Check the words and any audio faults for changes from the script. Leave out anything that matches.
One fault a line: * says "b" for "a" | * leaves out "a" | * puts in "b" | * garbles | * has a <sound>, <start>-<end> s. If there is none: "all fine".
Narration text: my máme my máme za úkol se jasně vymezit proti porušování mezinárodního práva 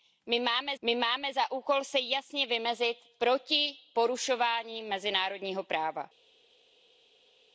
all fine